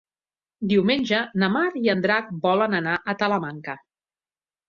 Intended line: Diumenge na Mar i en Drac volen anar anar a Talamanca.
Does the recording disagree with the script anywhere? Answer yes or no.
yes